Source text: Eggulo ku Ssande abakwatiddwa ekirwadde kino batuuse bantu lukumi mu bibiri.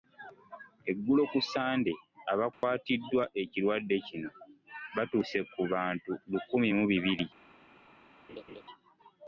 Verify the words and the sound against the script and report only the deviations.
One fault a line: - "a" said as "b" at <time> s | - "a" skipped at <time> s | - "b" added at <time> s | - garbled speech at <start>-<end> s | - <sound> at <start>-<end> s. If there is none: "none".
- dropout at 2.5-2.6 s
- "ku" added at 5.5 s
- laugh at 8.3-8.6 s